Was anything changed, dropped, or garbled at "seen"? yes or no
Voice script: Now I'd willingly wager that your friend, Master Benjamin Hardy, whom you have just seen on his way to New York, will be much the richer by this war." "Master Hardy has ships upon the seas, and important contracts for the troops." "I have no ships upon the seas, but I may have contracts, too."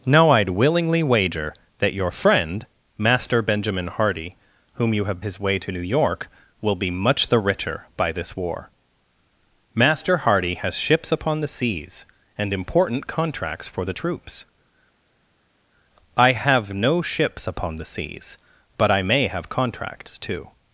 yes